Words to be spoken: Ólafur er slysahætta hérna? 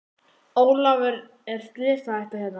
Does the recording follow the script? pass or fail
pass